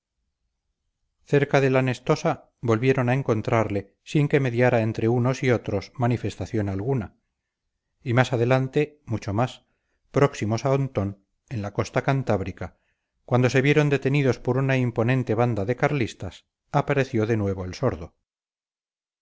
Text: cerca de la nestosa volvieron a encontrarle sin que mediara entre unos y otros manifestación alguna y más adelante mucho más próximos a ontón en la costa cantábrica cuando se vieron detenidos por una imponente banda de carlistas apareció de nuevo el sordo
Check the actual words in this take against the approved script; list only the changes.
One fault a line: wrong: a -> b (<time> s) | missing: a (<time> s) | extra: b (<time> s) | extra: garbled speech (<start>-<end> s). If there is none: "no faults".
no faults